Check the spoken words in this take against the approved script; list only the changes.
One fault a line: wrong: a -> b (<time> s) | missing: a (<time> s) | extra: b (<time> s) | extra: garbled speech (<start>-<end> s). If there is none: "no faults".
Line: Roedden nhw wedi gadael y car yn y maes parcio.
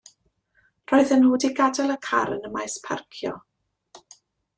no faults